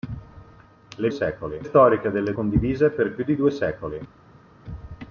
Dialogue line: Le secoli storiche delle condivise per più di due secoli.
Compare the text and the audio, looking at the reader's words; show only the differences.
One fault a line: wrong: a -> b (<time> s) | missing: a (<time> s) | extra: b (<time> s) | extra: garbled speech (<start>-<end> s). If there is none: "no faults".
no faults